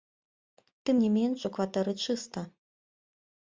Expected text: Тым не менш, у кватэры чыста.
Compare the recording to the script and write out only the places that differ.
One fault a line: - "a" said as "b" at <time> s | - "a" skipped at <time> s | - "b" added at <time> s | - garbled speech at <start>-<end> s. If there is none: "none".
none